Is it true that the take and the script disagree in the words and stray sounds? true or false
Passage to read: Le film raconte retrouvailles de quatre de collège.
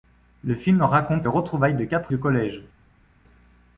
false